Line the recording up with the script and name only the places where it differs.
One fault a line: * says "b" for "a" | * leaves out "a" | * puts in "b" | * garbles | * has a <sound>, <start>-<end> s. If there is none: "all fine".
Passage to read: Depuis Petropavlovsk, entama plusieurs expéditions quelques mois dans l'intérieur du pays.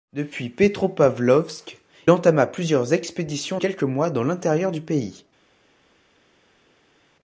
all fine